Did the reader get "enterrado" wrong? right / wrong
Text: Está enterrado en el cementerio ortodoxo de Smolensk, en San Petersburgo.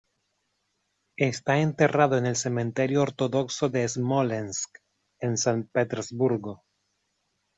right